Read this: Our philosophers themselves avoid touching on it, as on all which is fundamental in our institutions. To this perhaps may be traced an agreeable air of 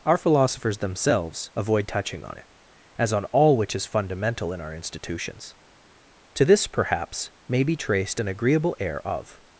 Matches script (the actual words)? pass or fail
pass